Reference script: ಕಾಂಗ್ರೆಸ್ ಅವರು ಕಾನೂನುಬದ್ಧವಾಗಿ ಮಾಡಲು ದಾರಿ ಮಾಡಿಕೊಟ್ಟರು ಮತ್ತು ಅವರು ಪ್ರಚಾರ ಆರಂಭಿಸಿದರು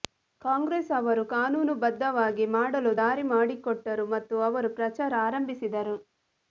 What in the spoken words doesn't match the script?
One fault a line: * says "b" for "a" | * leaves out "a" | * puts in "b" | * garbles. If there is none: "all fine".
all fine